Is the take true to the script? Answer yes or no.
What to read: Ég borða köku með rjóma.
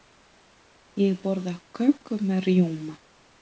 yes